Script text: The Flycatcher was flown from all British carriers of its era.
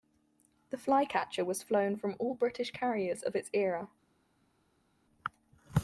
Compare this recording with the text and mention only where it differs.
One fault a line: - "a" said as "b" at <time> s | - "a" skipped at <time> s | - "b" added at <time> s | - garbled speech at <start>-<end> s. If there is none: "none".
none